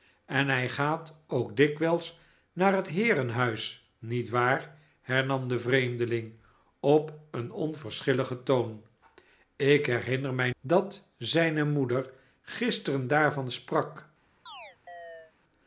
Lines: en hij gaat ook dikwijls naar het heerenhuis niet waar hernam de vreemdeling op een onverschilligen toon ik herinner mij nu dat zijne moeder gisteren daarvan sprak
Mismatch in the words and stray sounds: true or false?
true